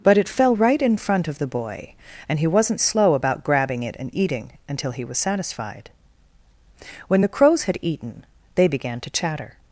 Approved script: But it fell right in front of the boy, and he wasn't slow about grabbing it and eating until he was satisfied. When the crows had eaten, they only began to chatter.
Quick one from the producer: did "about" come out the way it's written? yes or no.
yes